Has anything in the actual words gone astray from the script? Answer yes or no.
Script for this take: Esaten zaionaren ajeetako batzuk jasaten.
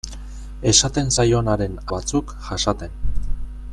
yes